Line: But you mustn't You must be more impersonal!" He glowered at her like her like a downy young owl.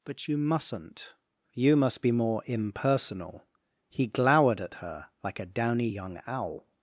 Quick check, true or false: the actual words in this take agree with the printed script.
false